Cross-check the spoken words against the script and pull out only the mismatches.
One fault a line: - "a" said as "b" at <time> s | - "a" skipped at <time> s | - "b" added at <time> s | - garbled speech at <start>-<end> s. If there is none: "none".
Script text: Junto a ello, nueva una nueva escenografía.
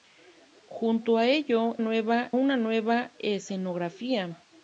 none